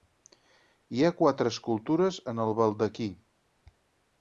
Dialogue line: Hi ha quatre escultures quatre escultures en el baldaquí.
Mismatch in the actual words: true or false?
true